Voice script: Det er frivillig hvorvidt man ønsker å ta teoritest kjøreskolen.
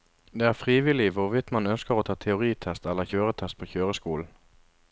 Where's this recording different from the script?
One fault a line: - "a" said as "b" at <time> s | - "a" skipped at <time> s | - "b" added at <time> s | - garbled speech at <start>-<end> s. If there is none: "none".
- "eller kjøretest på" added at 2.9 s